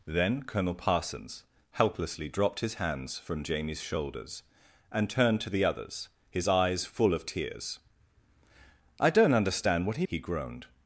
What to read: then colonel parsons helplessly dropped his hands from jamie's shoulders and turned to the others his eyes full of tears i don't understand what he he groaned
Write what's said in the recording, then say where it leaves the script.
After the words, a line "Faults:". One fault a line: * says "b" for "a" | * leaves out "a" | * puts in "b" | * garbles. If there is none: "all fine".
then colonel parsons helplessly dropped his hands from jamie's shoulders and turned to the others his eyes full of tears i don't understand what he he groaned
Faults:
all fine